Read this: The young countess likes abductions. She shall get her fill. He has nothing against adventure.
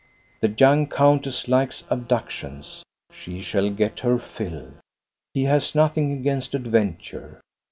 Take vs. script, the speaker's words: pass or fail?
pass